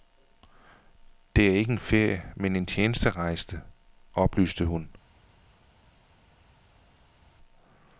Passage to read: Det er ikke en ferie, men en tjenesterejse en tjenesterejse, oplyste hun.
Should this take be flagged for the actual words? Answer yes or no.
yes